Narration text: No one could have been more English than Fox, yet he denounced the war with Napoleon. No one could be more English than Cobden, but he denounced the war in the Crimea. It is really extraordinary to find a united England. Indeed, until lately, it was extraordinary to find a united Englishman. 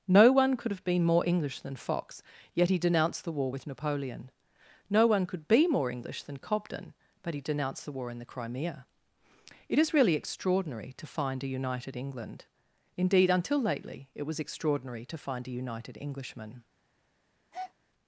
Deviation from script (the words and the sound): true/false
true